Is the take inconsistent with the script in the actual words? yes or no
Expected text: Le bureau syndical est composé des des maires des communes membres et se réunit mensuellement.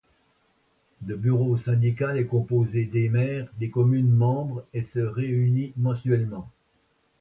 yes